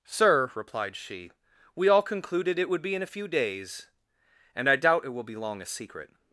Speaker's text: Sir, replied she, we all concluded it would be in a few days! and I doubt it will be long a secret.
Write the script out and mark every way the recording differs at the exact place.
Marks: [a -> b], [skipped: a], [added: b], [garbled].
Sir, replied she, we all concluded it would be in a few days! and I doubt it will be long a secret.